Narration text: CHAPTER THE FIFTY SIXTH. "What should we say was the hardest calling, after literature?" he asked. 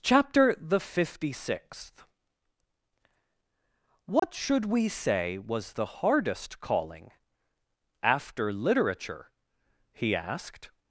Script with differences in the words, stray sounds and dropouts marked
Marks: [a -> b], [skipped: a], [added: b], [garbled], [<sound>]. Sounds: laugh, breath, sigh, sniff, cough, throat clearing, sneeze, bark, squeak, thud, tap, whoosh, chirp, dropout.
CHAPTER THE FIFTY SIXTH. "What [dropout] should we say was the hardest calling, after literature?" he asked.